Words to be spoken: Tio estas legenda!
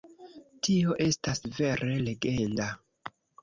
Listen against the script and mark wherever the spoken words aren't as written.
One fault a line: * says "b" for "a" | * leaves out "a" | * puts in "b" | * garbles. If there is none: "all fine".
* puts in "vere"